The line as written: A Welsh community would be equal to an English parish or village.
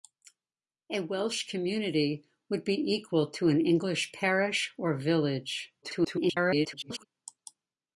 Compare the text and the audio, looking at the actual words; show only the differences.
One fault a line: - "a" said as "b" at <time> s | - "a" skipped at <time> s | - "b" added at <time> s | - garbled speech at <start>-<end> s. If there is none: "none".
- garbled speech at 5.8-7.1 s